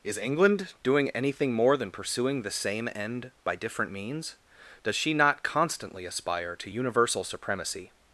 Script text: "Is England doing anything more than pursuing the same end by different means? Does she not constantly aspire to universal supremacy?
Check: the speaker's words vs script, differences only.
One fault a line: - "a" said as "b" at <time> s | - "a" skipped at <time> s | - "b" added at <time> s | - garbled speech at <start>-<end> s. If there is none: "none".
none